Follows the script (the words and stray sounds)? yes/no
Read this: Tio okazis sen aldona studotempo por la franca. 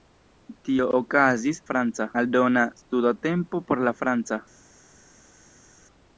no